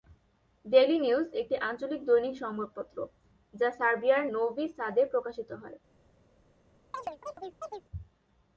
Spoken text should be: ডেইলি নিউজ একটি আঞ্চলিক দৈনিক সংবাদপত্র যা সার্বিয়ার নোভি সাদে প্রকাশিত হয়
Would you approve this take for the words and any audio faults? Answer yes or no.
no